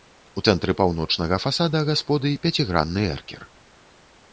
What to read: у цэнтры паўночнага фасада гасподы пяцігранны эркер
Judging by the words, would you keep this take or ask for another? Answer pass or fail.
pass